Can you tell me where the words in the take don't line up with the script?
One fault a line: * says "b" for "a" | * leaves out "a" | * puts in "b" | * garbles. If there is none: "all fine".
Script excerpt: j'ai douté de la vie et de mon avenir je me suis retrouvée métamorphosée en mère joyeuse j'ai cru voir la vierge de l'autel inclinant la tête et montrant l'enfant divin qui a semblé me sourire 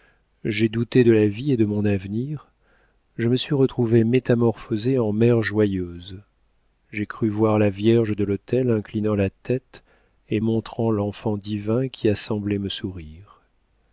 all fine